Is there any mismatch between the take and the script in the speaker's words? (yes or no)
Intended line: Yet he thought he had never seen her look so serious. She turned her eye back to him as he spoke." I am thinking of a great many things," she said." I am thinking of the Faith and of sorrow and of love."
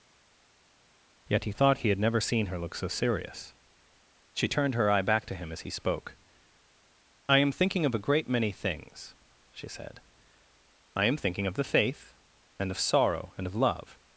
no